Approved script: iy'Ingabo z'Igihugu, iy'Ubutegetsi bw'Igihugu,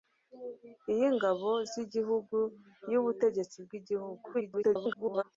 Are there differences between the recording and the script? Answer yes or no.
yes